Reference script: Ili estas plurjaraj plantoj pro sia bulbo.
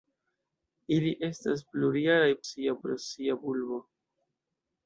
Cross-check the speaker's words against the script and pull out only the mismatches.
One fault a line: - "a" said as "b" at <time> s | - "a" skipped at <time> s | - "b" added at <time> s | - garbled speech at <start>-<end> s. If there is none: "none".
- "plantoj" said as "sia" at 2.5 s